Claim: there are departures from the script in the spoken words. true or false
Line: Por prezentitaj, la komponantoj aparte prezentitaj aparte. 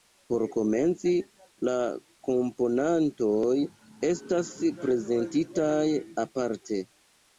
true